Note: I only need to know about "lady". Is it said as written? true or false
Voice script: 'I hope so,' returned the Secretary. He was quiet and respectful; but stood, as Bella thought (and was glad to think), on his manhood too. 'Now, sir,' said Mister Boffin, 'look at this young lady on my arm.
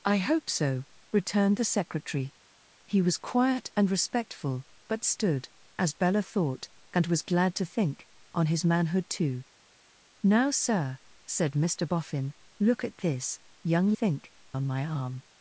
false